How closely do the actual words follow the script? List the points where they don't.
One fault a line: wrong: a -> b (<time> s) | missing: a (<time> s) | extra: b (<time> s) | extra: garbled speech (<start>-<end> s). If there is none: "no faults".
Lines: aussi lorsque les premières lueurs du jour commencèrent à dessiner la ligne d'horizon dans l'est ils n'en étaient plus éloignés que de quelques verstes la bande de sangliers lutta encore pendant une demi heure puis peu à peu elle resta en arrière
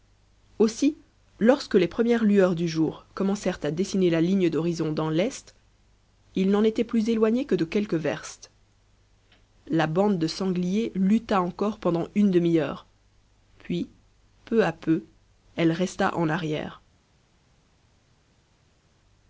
no faults